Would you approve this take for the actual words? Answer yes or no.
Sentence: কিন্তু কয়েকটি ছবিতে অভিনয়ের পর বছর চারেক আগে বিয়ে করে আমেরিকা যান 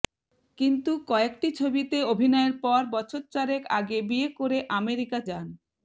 yes